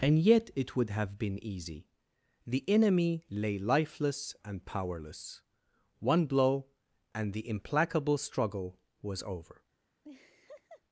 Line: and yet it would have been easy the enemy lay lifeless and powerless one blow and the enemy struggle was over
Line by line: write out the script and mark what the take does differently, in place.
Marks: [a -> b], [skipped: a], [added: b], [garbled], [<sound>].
and yet it would have been easy the enemy lay lifeless and powerless one blow and the [enemy -> implacable] struggle was over [laugh]